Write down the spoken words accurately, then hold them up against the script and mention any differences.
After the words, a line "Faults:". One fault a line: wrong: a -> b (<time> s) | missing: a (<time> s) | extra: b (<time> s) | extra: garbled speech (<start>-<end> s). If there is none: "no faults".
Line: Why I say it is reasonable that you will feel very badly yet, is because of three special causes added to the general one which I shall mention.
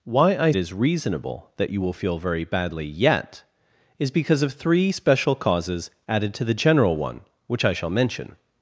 Why I it is reasonable that you will feel very badly yet, is because of three special causes added to the general one which I shall mention.
Faults:
missing: say (0.5 s)